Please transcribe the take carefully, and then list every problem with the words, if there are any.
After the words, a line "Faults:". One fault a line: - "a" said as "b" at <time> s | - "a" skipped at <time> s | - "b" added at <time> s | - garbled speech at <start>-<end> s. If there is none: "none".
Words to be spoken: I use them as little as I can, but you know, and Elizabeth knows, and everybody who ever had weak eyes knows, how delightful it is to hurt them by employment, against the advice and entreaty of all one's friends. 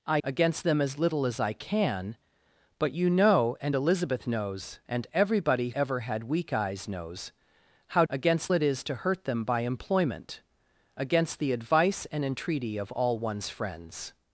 I against them as little as I can, but you know, and Elizabeth knows, and everybody ever had weak eyes knows, how against it is to hurt them by employment, against the advice and entreaty of all one's friends.
Faults:
- "use" said as "against" at 0.2 s
- "who" skipped at 5.7 s
- "delightful" said as "against" at 8.1 s